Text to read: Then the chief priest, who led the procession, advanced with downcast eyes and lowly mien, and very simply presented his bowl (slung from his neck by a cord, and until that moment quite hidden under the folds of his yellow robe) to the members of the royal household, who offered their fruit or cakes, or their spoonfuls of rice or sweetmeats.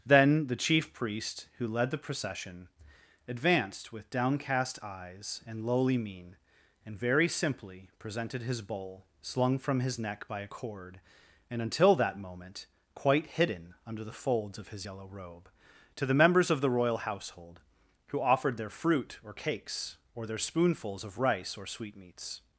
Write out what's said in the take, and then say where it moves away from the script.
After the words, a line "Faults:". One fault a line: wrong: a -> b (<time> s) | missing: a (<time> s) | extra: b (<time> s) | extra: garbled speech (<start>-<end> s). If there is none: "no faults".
Then the chief priest, who led the procession, advanced with downcast eyes and lowly mien, and very simply presented his bowl (slung from his neck by a cord, and until that moment quite hidden under the folds of his yellow robe) to the members of the royal household, who offered their fruit or cakes, or their spoonfuls of rice or sweetmeats.
Faults:
no faults